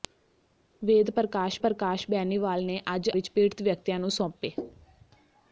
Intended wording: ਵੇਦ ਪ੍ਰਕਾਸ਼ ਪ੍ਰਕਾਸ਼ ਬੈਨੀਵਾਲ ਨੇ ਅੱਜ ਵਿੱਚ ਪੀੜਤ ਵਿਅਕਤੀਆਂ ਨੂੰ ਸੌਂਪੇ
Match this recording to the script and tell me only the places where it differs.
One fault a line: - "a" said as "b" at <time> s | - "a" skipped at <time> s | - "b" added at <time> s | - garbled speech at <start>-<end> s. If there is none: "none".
none